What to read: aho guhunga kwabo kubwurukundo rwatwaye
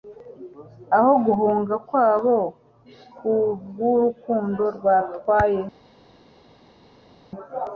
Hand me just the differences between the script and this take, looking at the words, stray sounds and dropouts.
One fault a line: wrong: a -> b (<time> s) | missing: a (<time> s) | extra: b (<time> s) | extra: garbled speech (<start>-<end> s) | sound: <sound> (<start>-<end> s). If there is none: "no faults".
no faults